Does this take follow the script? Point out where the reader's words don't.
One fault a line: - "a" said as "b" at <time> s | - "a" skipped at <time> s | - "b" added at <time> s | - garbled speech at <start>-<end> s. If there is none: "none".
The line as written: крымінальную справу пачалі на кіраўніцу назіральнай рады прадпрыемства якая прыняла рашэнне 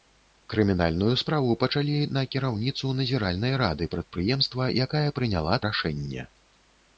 none